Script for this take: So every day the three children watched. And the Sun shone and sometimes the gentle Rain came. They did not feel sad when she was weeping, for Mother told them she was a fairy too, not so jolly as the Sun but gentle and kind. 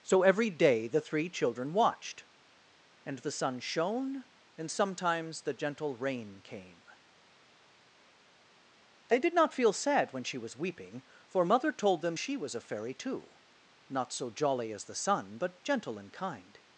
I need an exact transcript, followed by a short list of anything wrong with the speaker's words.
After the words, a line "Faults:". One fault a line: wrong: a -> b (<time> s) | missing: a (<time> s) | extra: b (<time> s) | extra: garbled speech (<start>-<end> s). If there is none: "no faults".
So every day the three children watched. And the Sun shone and sometimes the gentle Rain came. They did not feel sad when she was weeping, for Mother told them she was a fairy too, not so jolly as the Sun but gentle and kind.
Faults:
no faults